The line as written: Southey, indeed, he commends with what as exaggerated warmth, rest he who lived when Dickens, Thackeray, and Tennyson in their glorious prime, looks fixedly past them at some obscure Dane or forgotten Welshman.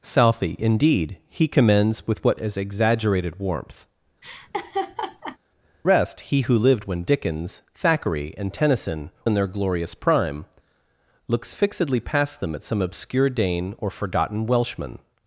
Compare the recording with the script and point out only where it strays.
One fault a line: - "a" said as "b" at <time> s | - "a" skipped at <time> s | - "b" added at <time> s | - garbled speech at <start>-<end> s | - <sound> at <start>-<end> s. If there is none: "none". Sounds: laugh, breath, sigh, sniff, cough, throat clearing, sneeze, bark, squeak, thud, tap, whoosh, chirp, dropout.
- laugh at 4.2-5.4 s